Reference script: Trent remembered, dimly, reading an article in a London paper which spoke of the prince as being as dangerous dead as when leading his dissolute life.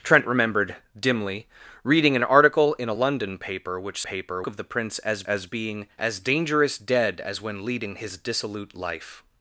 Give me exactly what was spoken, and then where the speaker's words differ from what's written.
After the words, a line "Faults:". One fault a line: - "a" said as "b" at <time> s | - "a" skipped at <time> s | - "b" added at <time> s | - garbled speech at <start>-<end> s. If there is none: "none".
Trent remembered, dimly, reading an article in a London paper which paper of the prince as as being as dangerous dead as when leading his dissolute life.
Faults:
- "spoke" said as "paper" at 4.0 s
- "as" added at 5.2 s